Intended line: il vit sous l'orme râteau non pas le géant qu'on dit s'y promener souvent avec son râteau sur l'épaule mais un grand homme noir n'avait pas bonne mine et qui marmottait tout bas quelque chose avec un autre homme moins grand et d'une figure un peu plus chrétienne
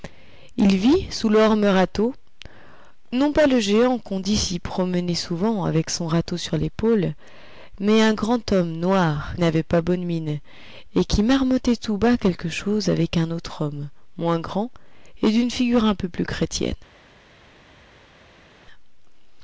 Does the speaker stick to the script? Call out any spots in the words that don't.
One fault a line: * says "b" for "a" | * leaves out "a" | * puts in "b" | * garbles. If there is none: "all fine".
all fine